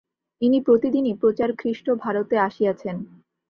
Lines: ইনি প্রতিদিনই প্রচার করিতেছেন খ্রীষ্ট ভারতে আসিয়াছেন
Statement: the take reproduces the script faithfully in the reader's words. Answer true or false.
false